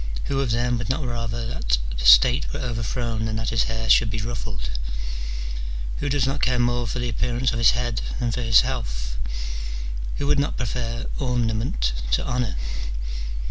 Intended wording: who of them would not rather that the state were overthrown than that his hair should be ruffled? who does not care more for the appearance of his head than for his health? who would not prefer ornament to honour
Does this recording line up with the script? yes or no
yes